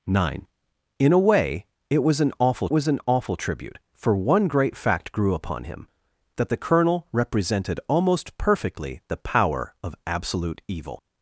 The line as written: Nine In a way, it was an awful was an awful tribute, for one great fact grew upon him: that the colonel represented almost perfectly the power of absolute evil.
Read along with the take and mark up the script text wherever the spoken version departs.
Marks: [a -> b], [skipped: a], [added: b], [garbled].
Nine In a way, it was an awful was an awful tribute, for one great fact grew upon him: that the colonel represented almost perfectly the power of absolute evil.